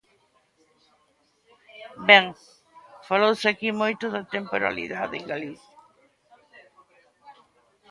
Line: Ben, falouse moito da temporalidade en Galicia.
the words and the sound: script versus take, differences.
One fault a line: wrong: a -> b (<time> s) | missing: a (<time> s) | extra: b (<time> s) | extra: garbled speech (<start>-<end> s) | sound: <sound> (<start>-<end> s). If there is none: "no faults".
extra: aquí (3.5 s)